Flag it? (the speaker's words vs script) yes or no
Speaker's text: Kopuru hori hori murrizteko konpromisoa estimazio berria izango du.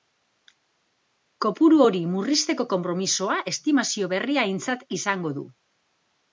yes